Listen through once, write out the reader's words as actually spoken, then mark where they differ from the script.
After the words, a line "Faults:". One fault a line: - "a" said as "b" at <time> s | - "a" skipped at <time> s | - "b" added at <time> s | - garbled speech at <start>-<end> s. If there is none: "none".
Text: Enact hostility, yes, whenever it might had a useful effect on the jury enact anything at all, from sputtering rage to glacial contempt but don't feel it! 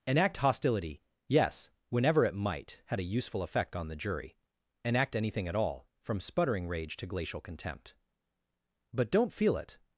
Enact hostility, yes, whenever it might had a useful effect on the jury enact anything at all, from sputtering rage to glacial contempt but don't feel it!
Faults:
none